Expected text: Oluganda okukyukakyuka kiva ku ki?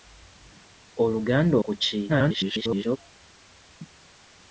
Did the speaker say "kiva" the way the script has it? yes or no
no